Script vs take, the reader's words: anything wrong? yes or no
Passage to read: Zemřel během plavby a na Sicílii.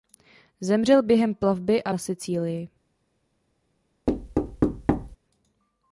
no